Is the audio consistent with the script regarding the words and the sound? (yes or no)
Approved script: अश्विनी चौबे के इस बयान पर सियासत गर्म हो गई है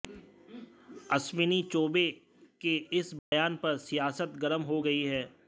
no